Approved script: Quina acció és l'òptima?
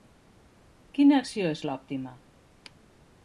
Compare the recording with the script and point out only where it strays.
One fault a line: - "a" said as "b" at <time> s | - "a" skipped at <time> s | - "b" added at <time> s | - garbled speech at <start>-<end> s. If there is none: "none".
none